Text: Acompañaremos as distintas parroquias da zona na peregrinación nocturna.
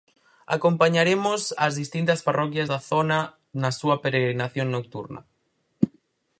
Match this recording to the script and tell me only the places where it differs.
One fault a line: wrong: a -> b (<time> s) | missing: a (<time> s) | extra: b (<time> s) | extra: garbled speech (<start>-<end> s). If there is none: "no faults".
extra: súa (3.8 s)